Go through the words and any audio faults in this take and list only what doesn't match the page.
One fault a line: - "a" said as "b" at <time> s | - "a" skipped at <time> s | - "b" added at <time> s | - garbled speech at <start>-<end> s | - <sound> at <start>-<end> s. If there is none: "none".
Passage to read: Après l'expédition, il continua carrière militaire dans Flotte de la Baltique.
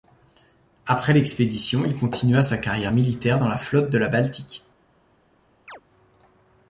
- "sa" added at 2.4 s
- "la" added at 3.5 s
- chirp at 5.7-5.8 s